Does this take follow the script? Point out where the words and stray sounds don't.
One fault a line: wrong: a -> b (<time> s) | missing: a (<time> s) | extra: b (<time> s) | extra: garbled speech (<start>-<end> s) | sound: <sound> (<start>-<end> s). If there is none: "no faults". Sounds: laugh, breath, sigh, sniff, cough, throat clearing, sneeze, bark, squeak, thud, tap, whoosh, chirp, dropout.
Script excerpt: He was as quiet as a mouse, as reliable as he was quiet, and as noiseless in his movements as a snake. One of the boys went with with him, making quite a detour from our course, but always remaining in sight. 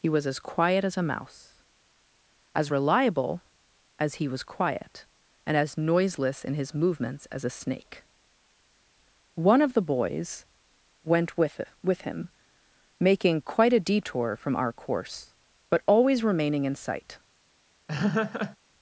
sound: laugh (17.9-18.6 s)